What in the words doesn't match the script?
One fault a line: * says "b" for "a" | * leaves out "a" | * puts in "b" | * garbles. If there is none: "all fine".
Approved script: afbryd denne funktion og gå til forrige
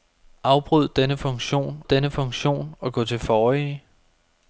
* puts in "denne funktion"